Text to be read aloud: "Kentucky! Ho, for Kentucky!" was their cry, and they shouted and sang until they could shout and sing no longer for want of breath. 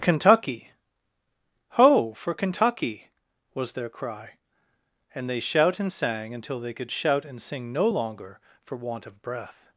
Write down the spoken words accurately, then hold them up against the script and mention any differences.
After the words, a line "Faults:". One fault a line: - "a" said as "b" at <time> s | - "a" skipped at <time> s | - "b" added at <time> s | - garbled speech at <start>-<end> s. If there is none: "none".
"Kentucky! Ho, for Kentucky!" was their cry, and they shout and sang until they could shout and sing no longer for want of breath.
Faults:
- "shouted" said as "shout" at 5.4 s